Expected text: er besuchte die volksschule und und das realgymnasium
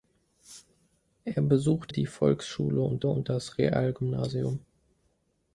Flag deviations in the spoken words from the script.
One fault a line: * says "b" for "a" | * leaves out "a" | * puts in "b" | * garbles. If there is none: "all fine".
all fine